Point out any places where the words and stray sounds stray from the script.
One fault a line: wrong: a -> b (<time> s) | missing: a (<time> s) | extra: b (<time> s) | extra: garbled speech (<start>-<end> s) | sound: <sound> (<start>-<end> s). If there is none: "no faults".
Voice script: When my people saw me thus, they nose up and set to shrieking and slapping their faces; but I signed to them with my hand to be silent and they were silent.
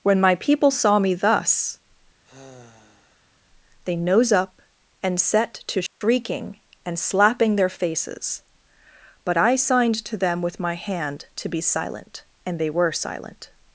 sound: sigh (2.2-3.4 s)
sound: dropout (5.9-6.0 s)